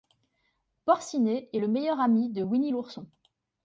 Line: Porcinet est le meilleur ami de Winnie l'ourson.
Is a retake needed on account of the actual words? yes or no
no